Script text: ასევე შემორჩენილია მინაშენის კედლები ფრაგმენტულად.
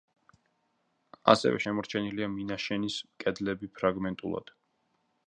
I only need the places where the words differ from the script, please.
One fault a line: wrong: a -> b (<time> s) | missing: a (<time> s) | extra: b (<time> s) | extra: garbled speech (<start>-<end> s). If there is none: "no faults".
no faults